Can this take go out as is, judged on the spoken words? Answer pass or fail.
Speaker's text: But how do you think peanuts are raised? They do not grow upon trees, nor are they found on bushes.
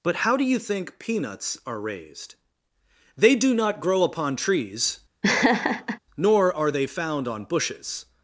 pass